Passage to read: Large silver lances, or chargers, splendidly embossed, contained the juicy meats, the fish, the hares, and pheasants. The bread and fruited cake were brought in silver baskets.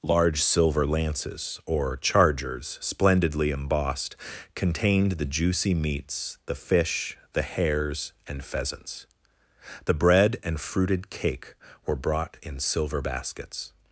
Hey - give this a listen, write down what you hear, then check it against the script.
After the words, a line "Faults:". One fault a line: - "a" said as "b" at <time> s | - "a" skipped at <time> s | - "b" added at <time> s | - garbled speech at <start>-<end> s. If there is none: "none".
Large silver lances, or chargers, splendidly embossed, contained the juicy meats, the fish, the hares, and pheasants. The bread and fruited cake were brought in silver baskets.
Faults:
none